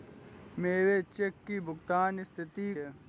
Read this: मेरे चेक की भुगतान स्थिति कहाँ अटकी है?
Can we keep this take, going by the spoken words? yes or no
no